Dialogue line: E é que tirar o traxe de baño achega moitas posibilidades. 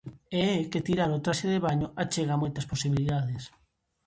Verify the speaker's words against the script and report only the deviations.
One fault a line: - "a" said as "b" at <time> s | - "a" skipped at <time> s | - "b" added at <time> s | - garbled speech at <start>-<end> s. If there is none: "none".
none